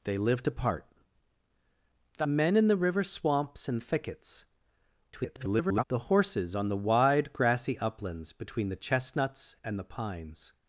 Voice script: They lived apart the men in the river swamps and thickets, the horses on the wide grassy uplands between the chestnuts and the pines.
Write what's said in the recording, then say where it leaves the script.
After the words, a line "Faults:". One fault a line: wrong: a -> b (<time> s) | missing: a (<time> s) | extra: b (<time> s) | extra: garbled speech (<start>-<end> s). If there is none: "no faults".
They lived apart the men in the river swamps and thickets, [garbled] the horses on the wide grassy uplands between the chestnuts and the pines.
Faults:
extra: garbled speech (5.1-5.8 s)